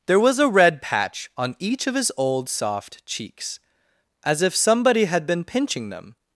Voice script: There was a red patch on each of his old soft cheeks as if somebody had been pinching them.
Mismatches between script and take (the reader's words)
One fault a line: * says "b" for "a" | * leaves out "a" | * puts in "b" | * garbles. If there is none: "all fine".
all fine